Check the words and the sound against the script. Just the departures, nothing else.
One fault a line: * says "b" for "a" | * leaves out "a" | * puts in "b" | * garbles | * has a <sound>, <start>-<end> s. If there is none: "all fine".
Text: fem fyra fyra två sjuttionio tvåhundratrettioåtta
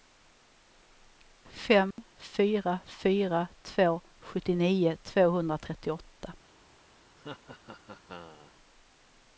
* has a dropout, 1.9-2.0 s
* has a laugh, 7.2-8.6 s